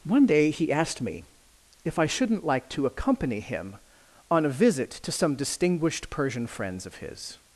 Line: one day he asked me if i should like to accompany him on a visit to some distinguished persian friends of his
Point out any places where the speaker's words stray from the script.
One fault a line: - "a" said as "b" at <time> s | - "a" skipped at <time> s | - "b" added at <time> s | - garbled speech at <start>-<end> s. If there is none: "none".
- "should" said as "shouldn't" at 2.0 s